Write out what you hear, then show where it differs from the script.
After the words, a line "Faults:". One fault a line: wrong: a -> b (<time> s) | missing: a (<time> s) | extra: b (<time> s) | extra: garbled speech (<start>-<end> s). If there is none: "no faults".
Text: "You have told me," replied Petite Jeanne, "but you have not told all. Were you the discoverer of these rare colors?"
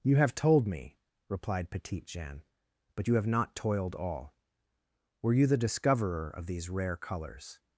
"You have told me," replied Petite Jeanne, "but you have not toiled all. Were you the discoverer of these rare colors?"
Faults:
wrong: told -> toiled (3.5 s)